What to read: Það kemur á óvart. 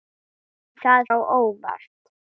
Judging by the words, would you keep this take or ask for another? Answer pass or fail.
fail